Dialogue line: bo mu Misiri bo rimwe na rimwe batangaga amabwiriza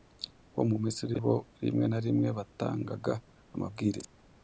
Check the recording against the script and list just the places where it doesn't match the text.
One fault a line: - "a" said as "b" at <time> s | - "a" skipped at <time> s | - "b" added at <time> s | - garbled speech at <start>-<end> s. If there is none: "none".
none